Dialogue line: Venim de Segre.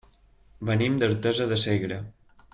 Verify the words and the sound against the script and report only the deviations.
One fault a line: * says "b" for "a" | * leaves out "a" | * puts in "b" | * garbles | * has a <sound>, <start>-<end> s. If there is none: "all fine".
* puts in "d'Artesa"